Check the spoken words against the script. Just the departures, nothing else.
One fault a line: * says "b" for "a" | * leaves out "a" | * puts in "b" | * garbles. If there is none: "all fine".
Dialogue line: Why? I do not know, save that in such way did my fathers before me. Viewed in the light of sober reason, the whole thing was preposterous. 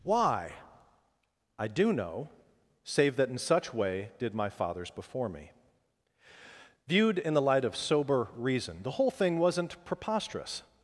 * leaves out "not"
* says "wasn't" for "was"